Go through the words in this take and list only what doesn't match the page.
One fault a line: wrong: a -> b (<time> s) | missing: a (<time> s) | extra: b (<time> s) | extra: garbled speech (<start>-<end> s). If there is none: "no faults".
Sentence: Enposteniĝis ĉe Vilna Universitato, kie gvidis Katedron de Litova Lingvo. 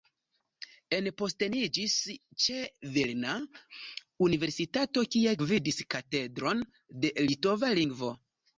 no faults